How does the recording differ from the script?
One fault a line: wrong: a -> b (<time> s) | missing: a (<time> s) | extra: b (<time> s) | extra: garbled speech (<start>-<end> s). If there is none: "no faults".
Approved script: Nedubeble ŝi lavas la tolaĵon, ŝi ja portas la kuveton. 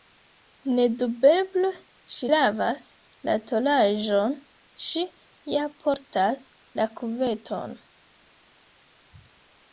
no faults